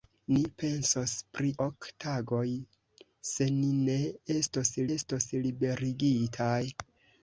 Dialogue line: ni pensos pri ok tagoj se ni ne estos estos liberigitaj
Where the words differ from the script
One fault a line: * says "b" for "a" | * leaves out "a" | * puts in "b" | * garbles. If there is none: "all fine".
all fine